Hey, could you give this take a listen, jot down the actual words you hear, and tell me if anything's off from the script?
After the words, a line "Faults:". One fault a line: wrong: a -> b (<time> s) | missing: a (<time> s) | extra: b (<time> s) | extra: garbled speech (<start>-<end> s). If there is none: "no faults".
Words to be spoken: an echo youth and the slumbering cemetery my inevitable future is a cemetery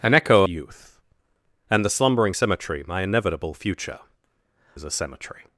an echo youth and the slumbering cemetery my inevitable future is a cemetery
Faults:
no faults